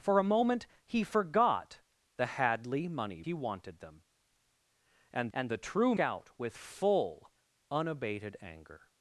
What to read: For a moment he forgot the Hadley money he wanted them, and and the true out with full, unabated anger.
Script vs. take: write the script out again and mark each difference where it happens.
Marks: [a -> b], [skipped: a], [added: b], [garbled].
For a moment he forgot the Hadley money he wanted them, and and the true out with full, unabated anger.